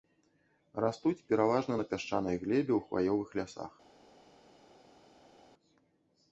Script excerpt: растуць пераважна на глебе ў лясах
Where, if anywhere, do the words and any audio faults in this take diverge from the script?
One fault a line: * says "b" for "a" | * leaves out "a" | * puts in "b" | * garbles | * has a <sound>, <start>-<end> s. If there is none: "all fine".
* puts in "пясчанай"
* puts in "хваёвых"